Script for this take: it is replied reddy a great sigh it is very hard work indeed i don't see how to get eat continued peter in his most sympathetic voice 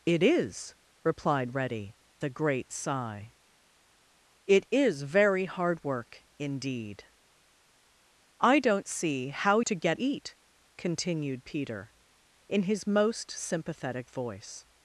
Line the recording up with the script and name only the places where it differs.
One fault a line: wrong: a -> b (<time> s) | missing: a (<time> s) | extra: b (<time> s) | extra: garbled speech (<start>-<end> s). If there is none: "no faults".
no faults